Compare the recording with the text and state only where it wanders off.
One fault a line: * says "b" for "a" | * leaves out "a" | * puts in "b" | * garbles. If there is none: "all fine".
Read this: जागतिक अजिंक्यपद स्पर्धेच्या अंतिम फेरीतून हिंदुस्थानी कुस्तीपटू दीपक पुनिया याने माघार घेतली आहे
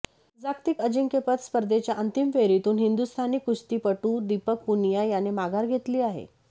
all fine